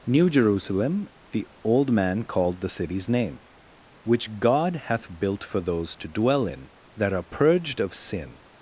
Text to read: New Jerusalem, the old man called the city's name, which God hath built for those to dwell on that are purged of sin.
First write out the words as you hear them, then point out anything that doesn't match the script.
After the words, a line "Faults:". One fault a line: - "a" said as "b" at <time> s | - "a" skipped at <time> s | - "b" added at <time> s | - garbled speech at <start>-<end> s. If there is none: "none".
New Jerusalem, the old man called the city's name, which God hath built for those to dwell in that are purged of sin.
Faults:
- "on" said as "in" at 6.5 s